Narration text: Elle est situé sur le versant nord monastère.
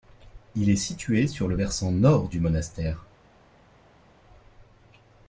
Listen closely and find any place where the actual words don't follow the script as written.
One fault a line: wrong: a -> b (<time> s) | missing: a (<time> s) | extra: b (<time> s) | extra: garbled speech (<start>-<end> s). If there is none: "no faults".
wrong: Elle -> Il (0.6 s)
extra: du (2.3 s)